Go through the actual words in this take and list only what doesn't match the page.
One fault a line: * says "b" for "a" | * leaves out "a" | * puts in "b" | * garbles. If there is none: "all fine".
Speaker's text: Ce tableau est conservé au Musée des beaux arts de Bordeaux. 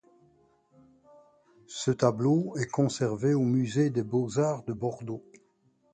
all fine